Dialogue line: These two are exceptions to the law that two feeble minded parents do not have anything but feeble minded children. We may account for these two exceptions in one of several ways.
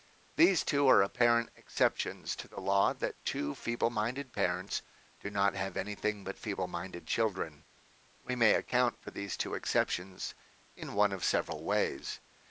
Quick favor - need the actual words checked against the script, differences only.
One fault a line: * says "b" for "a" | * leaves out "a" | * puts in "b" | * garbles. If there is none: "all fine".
* puts in "apparent"